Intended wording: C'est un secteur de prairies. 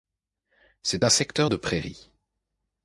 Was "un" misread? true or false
false